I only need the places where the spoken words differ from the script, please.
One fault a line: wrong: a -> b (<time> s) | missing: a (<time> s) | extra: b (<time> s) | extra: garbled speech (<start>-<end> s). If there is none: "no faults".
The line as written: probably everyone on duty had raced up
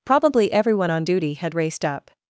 no faults